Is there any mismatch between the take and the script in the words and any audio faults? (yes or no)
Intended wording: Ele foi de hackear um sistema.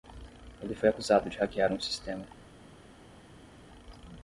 yes